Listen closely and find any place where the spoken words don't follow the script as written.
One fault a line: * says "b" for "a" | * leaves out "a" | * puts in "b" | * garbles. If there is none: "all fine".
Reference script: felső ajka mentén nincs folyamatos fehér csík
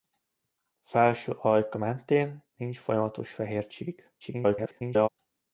* garbles